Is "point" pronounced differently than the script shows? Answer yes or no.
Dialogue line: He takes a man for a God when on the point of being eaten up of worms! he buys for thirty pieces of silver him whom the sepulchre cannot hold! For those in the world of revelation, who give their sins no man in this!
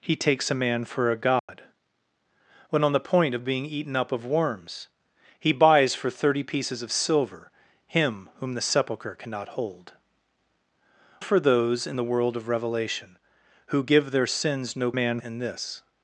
no